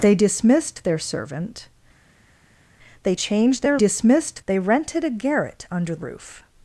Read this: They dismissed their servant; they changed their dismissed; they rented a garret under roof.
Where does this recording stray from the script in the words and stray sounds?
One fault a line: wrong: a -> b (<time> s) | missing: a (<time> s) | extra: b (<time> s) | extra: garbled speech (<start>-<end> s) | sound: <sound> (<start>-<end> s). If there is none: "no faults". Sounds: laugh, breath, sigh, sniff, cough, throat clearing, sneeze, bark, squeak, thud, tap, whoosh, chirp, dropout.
no faults